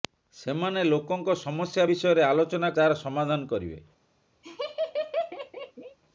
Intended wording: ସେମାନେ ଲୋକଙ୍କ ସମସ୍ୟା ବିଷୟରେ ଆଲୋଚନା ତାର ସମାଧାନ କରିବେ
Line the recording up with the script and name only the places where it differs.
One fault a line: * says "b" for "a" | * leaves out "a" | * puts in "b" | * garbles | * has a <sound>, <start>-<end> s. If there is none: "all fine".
* has a laugh, 4.4-6.0 s